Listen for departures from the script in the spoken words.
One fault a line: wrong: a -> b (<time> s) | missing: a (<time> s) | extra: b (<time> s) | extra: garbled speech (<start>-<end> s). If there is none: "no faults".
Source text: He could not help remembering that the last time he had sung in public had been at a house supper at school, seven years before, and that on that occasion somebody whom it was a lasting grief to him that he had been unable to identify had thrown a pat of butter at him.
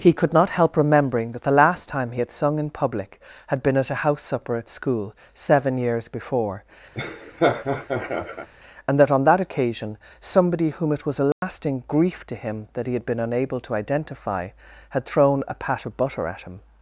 no faults